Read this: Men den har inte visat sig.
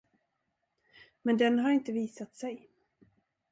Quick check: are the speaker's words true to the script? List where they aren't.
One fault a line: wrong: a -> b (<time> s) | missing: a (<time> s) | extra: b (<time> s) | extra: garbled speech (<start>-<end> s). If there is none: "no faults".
no faults